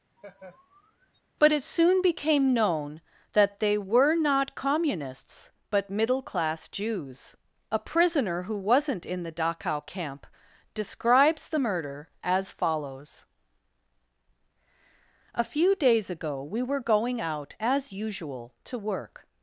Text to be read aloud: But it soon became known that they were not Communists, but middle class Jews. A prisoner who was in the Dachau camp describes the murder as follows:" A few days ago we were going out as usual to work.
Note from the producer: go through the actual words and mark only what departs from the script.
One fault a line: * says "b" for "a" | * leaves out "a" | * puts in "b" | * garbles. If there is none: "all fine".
* says "wasn't" for "was"